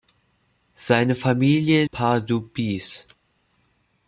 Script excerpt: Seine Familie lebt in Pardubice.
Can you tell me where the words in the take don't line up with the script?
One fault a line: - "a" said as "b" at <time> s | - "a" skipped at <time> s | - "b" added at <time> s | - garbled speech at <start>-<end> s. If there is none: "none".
- "lebt in" skipped at 1.9 s